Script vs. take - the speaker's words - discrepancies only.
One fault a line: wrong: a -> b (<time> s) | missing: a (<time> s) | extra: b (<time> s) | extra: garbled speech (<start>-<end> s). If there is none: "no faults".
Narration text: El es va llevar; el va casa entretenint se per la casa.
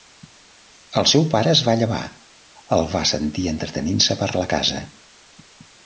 extra: seu pare (1.1 s)
wrong: casa -> sentir (3.1 s)